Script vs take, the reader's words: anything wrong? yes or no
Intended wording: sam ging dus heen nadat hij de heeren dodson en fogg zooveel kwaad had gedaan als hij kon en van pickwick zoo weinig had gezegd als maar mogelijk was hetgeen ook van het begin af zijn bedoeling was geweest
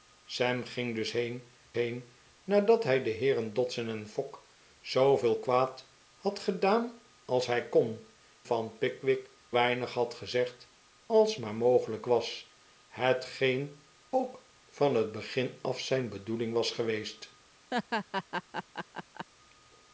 yes